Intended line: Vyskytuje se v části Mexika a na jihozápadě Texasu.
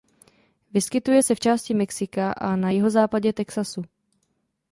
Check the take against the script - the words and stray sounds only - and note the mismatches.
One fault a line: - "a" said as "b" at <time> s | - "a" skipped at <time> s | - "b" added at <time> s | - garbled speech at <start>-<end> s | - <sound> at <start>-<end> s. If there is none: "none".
none